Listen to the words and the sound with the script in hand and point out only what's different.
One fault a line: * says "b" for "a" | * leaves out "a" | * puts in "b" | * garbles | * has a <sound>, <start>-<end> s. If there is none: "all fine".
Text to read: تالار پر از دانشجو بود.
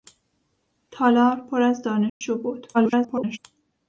* has a dropout, 2.1-2.2 s
* garbles